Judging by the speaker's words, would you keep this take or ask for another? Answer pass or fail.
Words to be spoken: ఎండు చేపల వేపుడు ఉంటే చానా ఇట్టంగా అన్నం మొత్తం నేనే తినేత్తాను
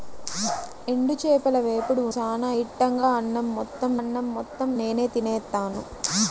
fail